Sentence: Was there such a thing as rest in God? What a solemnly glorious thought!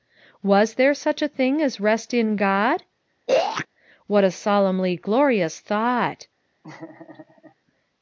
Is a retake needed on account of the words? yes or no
no